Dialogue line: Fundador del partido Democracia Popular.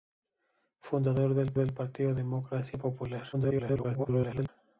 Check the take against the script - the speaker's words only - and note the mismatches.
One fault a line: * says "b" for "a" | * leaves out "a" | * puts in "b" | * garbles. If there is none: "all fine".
* puts in "del"
* garbles